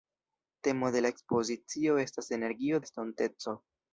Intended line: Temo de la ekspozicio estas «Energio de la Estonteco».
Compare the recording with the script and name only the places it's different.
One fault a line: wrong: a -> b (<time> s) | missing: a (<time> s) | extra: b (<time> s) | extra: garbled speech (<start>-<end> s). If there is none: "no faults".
missing: de (2.8 s)